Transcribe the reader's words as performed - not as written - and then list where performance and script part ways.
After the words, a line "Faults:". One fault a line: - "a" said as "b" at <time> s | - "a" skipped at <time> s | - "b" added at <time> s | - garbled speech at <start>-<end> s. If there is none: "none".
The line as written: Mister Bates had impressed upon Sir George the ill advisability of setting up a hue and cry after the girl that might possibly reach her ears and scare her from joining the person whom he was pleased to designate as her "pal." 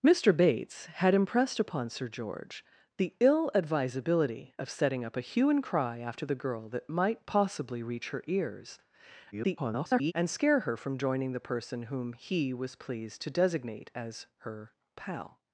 Mister Bates had impressed upon Sir George the ill advisability of setting up a hue and cry after the girl that might possibly reach her ears [garbled] and scare her from joining the person whom he was pleased to designate as her "pal."
Faults:
- garbled speech at 9.3-10.1 s